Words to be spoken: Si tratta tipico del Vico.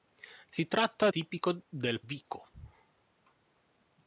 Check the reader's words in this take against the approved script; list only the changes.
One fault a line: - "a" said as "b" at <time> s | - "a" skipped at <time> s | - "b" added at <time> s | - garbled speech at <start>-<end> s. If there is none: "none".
none